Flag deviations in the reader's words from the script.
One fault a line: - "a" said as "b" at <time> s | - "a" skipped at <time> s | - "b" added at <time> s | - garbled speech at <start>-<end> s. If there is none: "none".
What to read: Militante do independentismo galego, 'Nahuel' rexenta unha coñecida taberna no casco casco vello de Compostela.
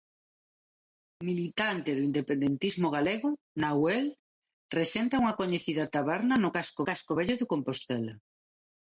none